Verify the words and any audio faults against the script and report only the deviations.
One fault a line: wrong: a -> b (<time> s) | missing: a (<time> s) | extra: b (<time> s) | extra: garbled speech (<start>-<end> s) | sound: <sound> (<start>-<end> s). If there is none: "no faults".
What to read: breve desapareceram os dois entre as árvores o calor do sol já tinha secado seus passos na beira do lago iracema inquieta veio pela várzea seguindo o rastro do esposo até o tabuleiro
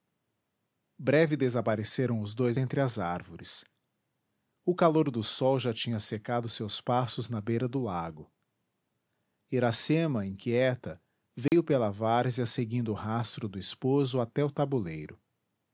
sound: dropout (11.5-11.5 s)